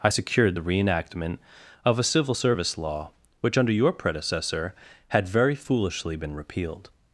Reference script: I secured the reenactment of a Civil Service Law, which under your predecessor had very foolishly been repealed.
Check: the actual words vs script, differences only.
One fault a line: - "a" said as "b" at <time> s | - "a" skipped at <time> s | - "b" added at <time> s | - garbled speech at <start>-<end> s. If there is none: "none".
none